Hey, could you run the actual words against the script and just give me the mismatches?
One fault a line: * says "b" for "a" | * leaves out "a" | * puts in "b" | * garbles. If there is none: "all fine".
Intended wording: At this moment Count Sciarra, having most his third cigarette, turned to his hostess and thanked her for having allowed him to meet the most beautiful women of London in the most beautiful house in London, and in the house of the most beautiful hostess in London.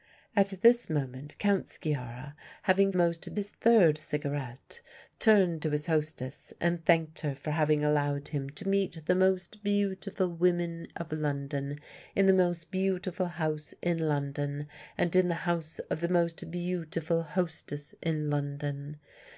all fine